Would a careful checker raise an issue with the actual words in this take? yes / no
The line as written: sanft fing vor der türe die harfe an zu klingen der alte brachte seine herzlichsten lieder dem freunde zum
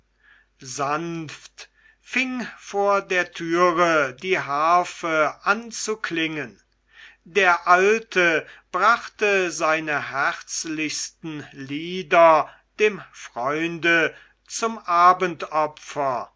no